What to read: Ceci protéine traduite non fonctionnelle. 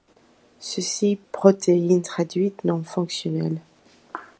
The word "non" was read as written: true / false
true